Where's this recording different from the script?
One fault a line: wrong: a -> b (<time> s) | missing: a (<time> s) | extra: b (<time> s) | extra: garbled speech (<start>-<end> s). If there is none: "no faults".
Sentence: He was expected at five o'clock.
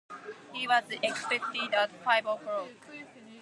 no faults